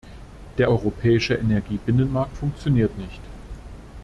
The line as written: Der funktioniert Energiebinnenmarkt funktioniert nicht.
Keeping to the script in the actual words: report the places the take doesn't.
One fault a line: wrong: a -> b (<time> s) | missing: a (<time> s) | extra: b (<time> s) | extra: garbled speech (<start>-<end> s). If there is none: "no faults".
wrong: funktioniert -> europäische (0.7 s)